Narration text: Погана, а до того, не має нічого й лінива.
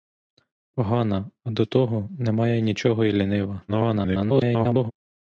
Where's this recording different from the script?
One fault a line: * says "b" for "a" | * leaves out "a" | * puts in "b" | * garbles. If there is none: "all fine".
* garbles